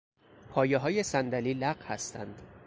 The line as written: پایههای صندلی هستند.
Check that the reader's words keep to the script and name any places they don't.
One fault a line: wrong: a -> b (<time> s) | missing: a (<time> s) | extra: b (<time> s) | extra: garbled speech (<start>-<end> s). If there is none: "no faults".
extra: لق (1.5 s)